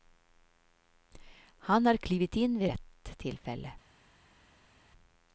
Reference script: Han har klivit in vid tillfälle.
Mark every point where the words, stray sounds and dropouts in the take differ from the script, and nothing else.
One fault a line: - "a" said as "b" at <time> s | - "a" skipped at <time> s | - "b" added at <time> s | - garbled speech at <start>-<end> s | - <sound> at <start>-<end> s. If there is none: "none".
- "rätt" added at 2.6 s